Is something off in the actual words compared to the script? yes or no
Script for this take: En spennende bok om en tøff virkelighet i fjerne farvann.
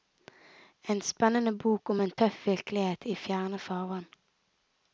no